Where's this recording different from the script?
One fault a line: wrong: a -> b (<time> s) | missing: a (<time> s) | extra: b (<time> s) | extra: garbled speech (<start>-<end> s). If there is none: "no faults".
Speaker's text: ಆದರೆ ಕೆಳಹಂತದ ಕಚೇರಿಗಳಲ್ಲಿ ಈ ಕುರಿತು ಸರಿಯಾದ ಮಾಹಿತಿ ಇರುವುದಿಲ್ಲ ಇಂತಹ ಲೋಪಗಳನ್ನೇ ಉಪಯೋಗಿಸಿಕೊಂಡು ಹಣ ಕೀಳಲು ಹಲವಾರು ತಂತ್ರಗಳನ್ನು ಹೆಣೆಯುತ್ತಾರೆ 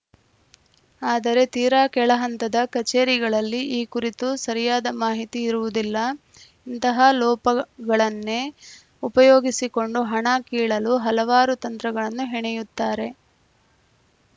extra: ತೀರಾ (1.5 s)